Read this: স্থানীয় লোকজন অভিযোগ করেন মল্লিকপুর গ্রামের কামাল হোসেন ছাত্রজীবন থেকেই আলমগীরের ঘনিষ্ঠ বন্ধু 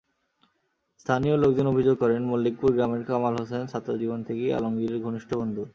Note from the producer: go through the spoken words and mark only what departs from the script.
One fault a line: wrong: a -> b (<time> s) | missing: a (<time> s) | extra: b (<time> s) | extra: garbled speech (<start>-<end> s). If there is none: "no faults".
no faults